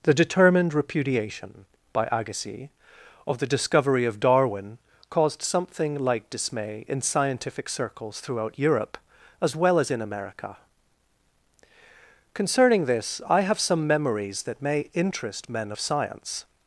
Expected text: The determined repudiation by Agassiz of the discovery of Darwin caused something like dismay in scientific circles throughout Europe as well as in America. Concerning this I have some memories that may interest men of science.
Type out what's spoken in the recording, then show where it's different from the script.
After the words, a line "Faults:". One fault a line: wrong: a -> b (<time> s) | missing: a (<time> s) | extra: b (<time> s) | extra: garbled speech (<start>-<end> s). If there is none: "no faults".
The determined repudiation by Agassiz of the discovery of Darwin caused something like dismay in scientific circles throughout Europe as well as in America. Concerning this I have some memories that may interest men of science.
Faults:
no faults